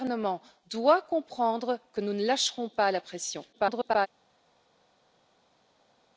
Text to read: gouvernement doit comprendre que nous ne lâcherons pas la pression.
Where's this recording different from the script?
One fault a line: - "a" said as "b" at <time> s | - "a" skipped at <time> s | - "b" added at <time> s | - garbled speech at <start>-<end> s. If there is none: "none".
- garbled speech at 3.5-4.1 s